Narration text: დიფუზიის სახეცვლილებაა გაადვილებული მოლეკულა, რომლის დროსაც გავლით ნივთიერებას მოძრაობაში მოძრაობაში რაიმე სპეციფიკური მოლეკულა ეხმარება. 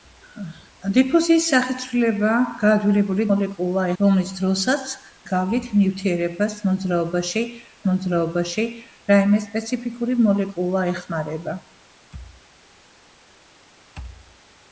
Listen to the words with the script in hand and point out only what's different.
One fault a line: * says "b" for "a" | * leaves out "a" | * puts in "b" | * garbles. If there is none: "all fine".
all fine